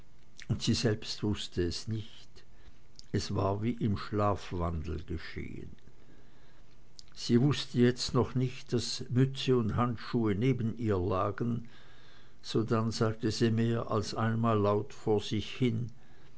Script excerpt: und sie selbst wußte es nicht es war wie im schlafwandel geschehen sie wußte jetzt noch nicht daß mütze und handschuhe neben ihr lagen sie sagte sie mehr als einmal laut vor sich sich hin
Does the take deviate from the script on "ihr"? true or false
false